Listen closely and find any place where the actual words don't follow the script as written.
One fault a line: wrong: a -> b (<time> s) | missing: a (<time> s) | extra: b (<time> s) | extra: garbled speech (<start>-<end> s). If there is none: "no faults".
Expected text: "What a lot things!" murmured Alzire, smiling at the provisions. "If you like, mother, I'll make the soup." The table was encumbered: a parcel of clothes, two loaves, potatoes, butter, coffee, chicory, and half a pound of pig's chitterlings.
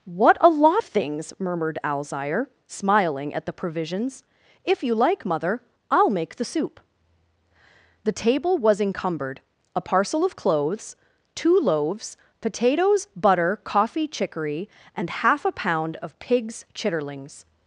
no faults